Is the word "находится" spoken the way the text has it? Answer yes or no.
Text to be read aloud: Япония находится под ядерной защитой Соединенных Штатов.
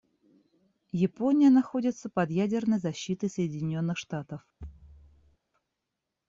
yes